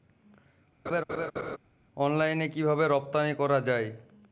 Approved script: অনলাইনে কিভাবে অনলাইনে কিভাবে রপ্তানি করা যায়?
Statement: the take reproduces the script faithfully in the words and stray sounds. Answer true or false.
false